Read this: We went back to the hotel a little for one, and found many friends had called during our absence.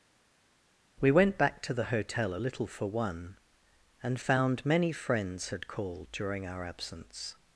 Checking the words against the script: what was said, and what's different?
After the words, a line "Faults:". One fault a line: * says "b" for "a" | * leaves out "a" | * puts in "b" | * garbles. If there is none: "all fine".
We went back to the hotel a little for one, and found many friends had called during our absence.
Faults:
all fine